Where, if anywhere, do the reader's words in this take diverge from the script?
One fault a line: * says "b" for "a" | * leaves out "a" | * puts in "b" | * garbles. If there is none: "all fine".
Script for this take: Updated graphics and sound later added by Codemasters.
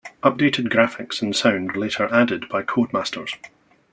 all fine